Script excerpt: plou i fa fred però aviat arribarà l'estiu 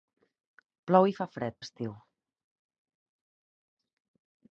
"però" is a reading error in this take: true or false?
true